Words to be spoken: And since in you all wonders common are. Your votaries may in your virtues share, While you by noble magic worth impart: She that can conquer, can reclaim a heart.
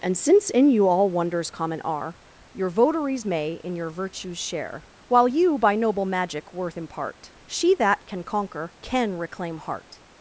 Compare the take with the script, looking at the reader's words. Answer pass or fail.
fail